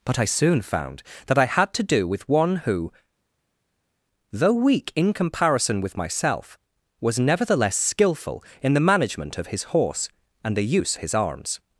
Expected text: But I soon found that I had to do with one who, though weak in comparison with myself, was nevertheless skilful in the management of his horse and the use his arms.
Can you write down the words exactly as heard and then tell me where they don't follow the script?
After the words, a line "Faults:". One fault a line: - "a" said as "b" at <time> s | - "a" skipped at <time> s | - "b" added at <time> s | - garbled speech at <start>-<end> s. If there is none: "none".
But I soon found that I had to do with one who, though weak in comparison with myself, was nevertheless skilful in the management of his horse and the use his arms.
Faults:
none